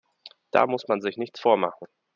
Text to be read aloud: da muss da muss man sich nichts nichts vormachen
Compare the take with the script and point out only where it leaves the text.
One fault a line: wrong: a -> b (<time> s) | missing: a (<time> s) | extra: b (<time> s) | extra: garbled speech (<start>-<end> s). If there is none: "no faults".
missing: da muss (0.9 s)
missing: nichts (1.4 s)